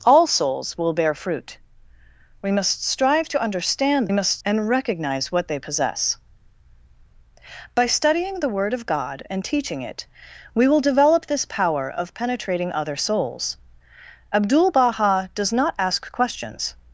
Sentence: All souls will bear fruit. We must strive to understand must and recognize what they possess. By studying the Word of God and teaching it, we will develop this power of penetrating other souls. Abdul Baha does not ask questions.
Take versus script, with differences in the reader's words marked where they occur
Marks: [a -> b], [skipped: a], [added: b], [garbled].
All souls will bear fruit. We must strive to understand must and recognize what they possess. By studying the Word of God and teaching it, we will develop this power of penetrating other souls. Abdul Baha does not ask questions.